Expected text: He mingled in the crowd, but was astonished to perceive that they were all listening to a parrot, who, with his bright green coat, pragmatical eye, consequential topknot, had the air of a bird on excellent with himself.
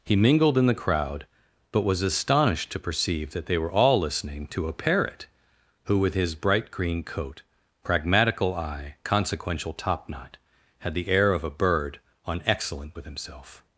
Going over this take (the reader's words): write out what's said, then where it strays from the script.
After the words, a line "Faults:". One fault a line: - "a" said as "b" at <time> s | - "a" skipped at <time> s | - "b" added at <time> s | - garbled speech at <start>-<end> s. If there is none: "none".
He mingled in the crowd, but was astonished to perceive that they were all listening to a parrot, who, with his bright green coat, pragmatical eye, consequential topknot, had the air of a bird on excellent with himself.
Faults:
none